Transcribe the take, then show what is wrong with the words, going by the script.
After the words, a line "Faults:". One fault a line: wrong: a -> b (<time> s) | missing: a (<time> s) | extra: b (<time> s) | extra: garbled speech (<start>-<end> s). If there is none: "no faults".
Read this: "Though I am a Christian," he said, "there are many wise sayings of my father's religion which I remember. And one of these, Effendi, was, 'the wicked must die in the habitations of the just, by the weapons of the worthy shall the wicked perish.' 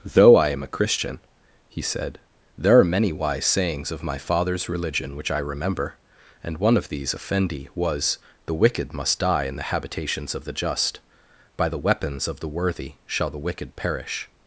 "Though I am a Christian," he said, "there are many wise sayings of my father's religion which I remember. And one of these, Effendi, was, 'the wicked must die in the habitations of the just, by the weapons of the worthy shall the wicked perish.'
Faults:
no faults